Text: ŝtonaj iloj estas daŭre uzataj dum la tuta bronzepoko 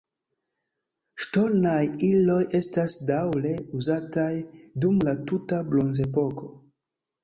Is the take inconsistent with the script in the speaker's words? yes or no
no